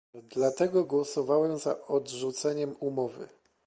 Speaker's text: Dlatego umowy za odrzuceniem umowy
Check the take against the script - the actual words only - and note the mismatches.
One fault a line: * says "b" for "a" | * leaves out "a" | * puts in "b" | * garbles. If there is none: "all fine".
* says "głosowałem" for "umowy"